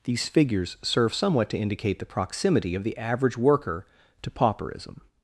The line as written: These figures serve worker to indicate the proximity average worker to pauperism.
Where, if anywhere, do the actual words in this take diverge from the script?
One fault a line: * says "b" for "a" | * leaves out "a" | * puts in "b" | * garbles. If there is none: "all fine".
* says "somewhat" for "worker"
* puts in "of the"